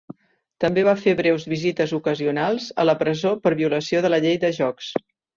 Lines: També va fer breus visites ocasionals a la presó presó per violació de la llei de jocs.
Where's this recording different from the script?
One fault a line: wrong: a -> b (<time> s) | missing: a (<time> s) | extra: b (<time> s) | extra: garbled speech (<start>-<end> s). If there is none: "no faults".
missing: presó (3.3 s)